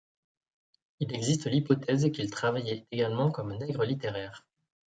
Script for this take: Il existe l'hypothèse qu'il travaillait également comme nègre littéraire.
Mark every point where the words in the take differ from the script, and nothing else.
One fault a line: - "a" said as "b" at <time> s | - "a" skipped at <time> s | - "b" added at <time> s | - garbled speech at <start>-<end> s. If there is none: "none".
none